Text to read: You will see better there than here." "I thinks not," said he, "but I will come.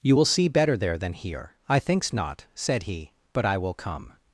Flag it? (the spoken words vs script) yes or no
no